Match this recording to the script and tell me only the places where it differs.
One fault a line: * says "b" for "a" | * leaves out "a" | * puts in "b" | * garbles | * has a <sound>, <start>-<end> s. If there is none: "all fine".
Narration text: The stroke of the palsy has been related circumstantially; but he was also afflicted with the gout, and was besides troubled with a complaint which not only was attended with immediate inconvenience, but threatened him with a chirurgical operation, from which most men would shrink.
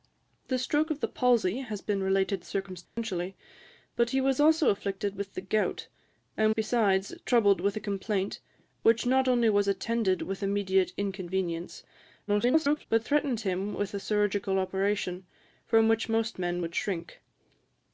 * has a dropout, 2.9-3.0 s
* leaves out "was"
* garbles